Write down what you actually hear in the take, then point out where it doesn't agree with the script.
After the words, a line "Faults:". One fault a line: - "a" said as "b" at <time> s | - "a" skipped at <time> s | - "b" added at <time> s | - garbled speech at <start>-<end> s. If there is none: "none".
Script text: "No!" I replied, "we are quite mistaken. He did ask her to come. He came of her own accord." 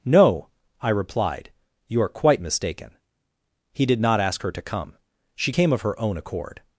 "No!" I replied, "you are quite mistaken. He did not ask her to come. She came of her own accord."
Faults:
- "we" said as "you" at 1.9 s
- "not" added at 4.0 s
- "He" said as "She" at 5.3 s